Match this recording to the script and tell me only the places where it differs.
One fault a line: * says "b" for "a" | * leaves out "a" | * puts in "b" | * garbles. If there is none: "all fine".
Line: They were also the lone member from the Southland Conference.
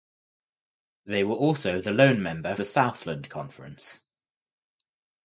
* leaves out "from"